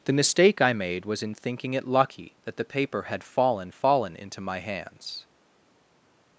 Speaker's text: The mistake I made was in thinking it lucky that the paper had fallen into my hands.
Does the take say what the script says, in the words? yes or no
no